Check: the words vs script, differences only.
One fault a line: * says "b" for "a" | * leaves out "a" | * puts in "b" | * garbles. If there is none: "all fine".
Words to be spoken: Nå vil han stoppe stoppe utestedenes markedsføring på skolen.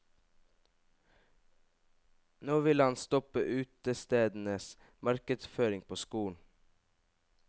* leaves out "stoppe"